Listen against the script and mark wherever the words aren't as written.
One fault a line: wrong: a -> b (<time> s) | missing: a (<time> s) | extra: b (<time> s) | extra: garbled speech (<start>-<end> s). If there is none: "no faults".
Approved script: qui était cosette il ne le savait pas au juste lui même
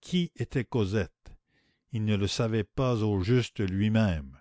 no faults